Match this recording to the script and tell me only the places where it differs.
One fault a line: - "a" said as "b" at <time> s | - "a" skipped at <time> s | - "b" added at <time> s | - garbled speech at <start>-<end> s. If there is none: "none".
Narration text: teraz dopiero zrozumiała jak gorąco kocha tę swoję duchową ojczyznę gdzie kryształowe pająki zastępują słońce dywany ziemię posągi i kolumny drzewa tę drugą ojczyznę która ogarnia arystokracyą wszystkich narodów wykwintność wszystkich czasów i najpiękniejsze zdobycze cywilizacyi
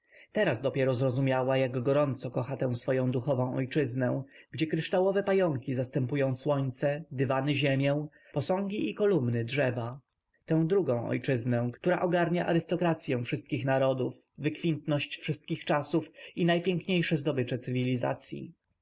none